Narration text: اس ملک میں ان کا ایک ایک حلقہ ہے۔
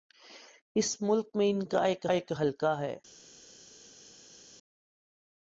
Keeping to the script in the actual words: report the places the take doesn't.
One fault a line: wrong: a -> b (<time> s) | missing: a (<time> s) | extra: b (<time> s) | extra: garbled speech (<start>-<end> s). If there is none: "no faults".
no faults